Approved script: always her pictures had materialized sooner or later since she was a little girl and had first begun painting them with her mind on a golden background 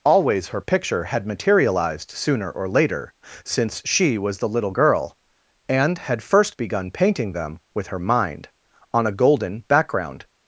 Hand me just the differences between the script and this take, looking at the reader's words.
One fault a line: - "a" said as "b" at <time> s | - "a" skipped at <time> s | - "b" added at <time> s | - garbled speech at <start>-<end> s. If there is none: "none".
- "pictures" said as "picture" at 0.6 s
- "a" said as "the" at 4.4 s